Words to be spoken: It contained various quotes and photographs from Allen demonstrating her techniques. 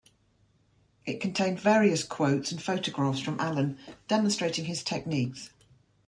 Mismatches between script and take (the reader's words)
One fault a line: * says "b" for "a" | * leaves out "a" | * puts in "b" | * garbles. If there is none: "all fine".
* says "his" for "her"